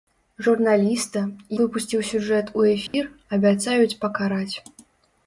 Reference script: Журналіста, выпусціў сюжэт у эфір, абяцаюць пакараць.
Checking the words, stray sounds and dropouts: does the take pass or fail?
fail